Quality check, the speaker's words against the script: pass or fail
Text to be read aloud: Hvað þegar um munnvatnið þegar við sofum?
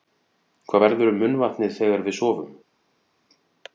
fail